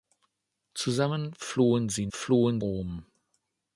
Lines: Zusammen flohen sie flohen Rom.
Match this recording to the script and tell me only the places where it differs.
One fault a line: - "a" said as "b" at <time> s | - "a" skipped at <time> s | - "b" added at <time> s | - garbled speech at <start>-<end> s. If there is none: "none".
none